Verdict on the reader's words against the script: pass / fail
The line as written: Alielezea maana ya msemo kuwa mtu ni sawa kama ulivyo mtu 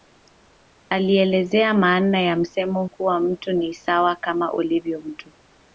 pass